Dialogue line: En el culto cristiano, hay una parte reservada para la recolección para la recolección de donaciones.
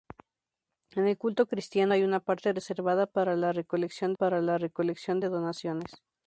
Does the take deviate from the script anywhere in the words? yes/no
no